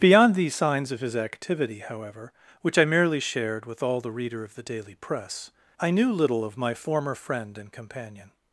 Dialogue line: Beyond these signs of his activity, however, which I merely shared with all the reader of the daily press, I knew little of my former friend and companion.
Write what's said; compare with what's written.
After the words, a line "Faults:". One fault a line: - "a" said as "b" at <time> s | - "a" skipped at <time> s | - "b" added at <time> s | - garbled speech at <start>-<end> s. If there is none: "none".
Beyond these signs of his activity, however, which I merely shared with all the reader of the daily press, I knew little of my former friend and companion.
Faults:
none